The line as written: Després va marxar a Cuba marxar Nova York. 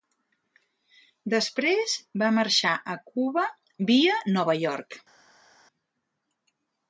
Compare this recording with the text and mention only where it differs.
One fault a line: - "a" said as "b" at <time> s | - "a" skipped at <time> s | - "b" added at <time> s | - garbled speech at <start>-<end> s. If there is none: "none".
- "marxar" said as "via" at 3.9 s